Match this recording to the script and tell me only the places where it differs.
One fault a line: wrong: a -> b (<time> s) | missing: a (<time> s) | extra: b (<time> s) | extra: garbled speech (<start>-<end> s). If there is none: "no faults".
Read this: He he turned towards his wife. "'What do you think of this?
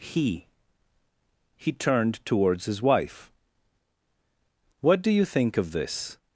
no faults